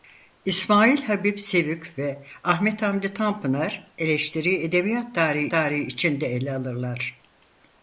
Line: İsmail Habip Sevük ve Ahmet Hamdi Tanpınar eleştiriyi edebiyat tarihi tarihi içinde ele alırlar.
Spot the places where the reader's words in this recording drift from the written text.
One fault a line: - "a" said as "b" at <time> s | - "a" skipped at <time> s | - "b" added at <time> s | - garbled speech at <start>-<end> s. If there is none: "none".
none